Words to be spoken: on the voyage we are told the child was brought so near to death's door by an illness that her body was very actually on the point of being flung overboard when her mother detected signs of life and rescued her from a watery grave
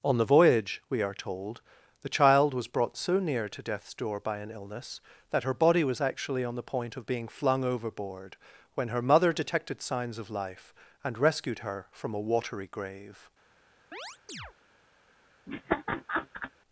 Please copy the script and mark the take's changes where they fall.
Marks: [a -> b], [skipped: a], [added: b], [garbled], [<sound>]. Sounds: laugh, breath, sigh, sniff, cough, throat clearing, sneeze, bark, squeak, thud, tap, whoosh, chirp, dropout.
on the voyage we are told the child was brought so near to death's door by an illness that her body was [skipped: very] actually on the point of being flung overboard when her mother detected signs of life and rescued her from a watery grave [chirp] [laugh]